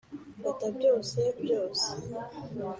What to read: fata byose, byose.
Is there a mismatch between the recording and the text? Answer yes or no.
no